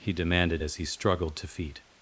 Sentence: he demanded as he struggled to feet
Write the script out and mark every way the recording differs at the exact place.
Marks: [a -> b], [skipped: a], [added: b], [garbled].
he demanded as he struggled to feet